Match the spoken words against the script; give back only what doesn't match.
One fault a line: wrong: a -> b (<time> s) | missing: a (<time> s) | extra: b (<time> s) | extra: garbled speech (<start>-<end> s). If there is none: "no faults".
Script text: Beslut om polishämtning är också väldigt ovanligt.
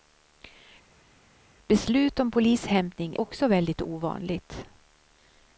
missing: är (3.2 s)